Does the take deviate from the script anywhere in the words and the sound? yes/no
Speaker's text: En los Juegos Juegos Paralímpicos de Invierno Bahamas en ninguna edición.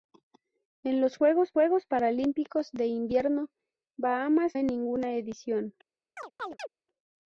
yes